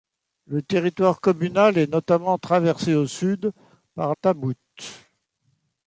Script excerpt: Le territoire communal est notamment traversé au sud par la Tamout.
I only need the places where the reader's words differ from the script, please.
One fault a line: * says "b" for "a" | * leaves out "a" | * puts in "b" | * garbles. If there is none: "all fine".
* leaves out "la"